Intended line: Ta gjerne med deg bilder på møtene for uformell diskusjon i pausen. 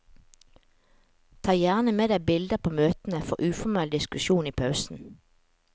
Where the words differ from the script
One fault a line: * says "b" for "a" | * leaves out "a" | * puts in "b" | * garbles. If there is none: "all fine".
all fine